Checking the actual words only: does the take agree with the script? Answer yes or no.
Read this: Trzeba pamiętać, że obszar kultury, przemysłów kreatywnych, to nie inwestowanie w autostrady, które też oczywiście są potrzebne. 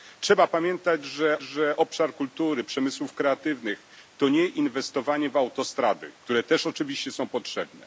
no